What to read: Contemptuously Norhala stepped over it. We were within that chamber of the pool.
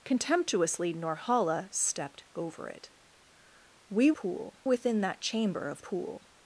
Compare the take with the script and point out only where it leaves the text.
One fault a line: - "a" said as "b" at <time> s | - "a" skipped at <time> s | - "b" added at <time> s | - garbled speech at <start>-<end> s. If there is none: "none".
- "were" said as "pool" at 4.1 s
- "the" skipped at 5.8 s